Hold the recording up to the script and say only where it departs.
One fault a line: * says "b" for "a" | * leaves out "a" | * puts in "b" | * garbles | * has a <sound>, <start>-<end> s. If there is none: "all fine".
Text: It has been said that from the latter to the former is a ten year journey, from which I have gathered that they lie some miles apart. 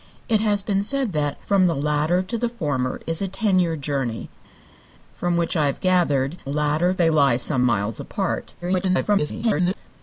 * says "latter" for "that"
* garbles